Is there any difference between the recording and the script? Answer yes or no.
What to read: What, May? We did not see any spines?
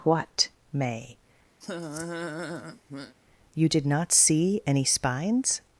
yes